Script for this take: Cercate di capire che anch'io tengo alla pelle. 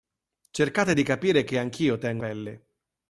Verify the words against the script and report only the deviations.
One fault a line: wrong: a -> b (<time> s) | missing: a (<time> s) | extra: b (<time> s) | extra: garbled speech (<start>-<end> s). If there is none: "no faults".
missing: alla (2.2 s)